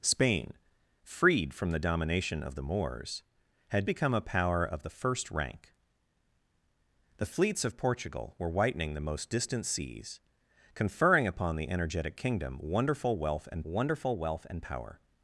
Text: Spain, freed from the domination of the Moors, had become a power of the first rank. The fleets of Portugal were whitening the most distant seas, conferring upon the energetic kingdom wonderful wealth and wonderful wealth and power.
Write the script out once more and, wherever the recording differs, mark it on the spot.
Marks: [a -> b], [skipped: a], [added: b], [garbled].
Spain, freed from the domination of the Moors, had become a power of the first rank. The fleets of Portugal were whitening the most distant seas, conferring upon the energetic kingdom wonderful wealth and wonderful wealth and power.